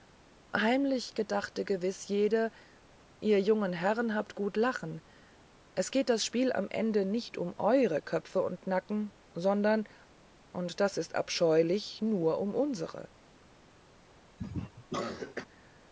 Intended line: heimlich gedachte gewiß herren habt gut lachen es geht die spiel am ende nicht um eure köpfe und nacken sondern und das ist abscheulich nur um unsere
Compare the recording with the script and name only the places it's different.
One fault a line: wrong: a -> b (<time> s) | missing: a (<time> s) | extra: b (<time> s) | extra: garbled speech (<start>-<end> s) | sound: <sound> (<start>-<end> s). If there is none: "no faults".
extra: jede ihr jungen (2.1 s)
wrong: die -> das (6.1 s)
sound: cough (14.4-15.5 s)